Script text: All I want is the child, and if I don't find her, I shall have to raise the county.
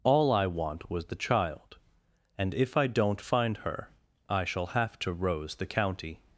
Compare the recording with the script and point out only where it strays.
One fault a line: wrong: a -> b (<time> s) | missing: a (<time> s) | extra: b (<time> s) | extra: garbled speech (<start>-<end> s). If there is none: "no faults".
wrong: is -> was (0.9 s)
wrong: raise -> rose (5.1 s)